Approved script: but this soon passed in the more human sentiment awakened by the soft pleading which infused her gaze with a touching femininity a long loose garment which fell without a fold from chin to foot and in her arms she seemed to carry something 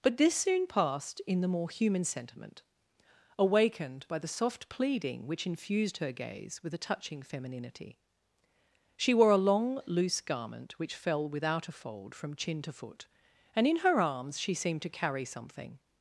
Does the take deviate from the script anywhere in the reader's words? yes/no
yes